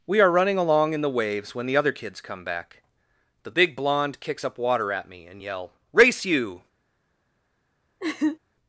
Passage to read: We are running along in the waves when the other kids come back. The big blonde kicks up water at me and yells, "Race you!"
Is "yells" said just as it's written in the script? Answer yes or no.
no